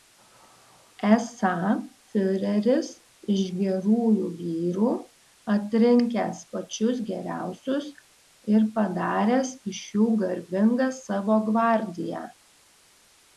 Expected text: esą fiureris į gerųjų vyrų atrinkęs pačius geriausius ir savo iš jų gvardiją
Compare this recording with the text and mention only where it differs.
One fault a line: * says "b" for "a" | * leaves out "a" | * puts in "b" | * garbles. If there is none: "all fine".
* says "iš" for "į"
* says "padaręs" for "savo"
* puts in "garbingą savo"